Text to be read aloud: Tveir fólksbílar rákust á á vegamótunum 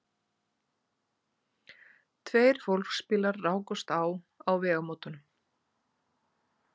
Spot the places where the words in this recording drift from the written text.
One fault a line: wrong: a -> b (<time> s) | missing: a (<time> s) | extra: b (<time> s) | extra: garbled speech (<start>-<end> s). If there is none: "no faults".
no faults